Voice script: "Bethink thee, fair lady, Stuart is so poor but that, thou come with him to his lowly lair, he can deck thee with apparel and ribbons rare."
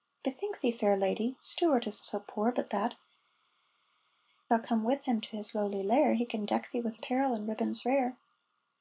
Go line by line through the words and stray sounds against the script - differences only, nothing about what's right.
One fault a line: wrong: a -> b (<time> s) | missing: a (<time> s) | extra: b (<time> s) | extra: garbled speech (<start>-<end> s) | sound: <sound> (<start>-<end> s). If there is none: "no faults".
no faults